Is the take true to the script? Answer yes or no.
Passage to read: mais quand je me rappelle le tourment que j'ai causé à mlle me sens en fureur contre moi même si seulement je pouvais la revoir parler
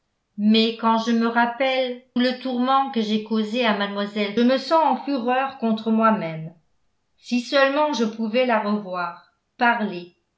yes